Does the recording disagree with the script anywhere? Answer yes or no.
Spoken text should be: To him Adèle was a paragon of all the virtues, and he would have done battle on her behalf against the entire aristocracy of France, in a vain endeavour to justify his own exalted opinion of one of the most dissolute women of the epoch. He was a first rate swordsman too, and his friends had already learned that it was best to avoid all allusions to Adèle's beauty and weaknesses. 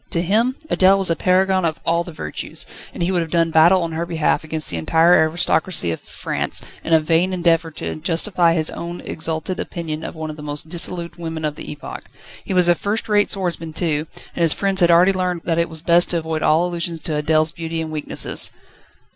no